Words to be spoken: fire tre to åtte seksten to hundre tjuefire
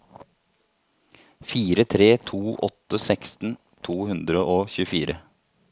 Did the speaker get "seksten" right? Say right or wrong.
right